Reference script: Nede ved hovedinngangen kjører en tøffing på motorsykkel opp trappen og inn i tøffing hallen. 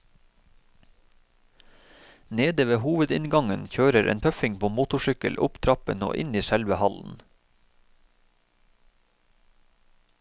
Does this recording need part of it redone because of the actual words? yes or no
yes